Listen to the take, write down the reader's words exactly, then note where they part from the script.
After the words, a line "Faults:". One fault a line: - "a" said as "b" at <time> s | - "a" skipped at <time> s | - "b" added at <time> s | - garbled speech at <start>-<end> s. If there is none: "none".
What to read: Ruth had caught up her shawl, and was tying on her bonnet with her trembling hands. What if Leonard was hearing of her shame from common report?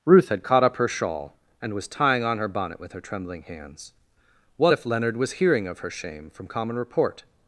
Ruth had caught up her shawl, and was tying on her bonnet with her trembling hands. What if Leonard was hearing of her shame from common report?
Faults:
none